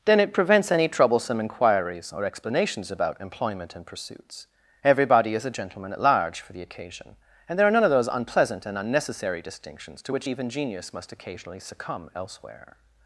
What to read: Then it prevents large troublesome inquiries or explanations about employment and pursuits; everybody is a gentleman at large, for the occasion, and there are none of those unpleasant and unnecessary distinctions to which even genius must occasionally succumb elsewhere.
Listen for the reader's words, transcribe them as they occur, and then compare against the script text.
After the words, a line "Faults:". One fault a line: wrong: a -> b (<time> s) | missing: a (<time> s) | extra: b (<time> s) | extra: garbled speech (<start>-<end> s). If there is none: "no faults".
Then it prevents any troublesome inquiries or explanations about employment and pursuits; everybody is a gentleman at large, for the occasion, and there are none of those unpleasant and unnecessary distinctions to which even genius must occasionally succumb elsewhere.
Faults:
wrong: large -> any (0.7 s)